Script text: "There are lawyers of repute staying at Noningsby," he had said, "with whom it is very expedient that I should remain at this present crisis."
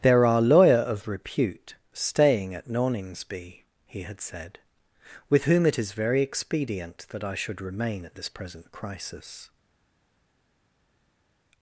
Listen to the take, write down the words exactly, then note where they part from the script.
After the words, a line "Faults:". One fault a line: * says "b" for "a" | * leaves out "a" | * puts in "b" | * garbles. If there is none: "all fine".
"There are lawyer of repute staying at Noningsby," he had said, "with whom it is very expedient that I should remain at this present crisis."
Faults:
* says "lawyer" for "lawyers"